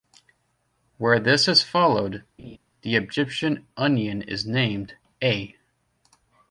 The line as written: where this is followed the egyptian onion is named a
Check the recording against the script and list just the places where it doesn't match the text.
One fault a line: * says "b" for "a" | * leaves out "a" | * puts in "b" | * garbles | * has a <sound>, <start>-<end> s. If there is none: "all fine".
* has a laugh, 2.4-2.6 s